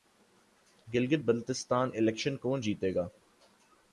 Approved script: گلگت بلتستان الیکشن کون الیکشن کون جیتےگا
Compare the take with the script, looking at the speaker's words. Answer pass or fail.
fail